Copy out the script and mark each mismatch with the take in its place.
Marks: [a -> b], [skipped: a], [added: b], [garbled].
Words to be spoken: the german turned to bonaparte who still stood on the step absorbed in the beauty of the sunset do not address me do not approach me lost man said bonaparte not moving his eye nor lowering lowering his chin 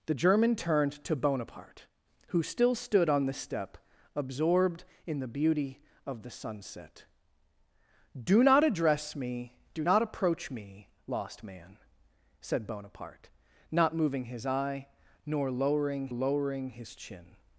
the german turned to bonaparte who still stood on the step absorbed in the beauty of the sunset do not address me do not approach me lost man said bonaparte not moving his eye nor lowering lowering his chin